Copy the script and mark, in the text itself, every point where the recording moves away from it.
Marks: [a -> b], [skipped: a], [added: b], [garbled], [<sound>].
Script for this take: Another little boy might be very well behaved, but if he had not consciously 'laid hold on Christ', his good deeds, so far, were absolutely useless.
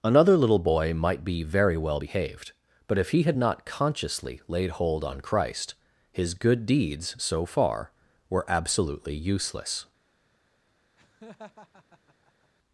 Another little boy might be very well behaved, but if he had not consciously 'laid hold on Christ', his good deeds, so far, were absolutely useless. [laugh]